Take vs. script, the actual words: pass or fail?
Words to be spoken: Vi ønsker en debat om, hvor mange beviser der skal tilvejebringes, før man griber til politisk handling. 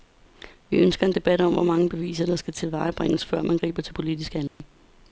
pass